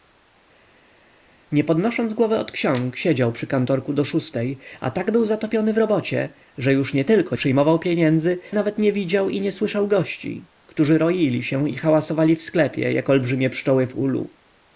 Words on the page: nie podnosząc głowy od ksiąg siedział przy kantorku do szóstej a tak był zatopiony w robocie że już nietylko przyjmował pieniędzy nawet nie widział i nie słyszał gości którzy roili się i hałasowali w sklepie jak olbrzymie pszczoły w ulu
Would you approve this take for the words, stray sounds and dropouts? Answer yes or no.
yes